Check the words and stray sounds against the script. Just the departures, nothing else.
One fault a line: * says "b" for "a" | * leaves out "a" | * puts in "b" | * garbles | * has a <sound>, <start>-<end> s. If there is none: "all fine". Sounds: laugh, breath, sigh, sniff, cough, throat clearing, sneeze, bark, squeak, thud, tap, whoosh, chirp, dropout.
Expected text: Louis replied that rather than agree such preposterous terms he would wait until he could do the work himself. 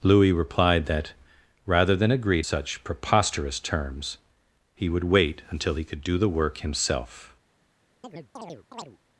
* has a chirp, 8.0-9.0 s